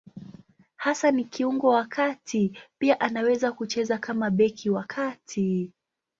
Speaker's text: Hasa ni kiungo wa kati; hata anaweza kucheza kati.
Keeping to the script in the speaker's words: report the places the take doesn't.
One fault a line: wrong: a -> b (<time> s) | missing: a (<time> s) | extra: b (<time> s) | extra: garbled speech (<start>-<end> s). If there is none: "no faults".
wrong: hata -> pia (2.8 s)
extra: kama beki wa (4.0 s)